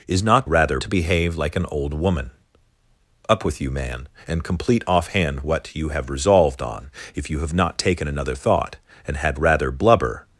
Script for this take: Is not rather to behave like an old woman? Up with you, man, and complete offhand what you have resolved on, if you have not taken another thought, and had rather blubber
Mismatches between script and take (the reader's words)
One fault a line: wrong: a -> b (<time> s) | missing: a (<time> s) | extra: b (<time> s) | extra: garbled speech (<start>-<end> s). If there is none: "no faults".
no faults